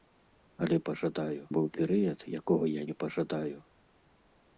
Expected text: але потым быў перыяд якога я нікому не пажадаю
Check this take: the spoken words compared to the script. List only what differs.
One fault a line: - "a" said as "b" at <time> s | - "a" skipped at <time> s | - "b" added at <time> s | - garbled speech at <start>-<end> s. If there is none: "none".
- "потым" said as "пажадаю" at 0.9 s
- "нікому" skipped at 2.8 s